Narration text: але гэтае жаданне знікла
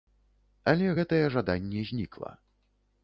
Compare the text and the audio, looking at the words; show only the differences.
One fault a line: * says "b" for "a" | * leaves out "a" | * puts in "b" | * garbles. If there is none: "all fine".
all fine